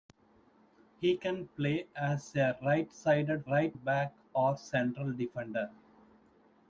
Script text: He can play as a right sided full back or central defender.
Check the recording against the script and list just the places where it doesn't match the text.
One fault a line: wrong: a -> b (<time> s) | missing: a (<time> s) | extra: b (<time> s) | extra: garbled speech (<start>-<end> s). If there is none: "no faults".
wrong: full -> right (3.5 s)